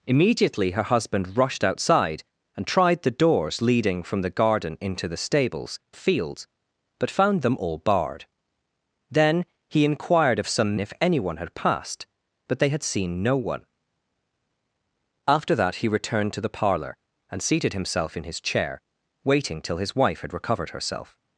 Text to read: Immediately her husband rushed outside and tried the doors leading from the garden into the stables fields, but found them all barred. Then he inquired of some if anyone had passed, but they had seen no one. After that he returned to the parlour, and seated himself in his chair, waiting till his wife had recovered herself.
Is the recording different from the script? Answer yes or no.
no